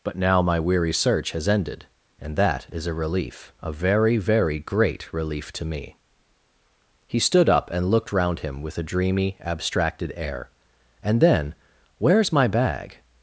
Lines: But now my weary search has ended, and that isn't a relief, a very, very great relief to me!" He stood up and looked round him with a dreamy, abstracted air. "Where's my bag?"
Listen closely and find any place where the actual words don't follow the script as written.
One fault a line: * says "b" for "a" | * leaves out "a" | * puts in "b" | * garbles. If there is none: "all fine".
* says "is" for "isn't"
* puts in "And then"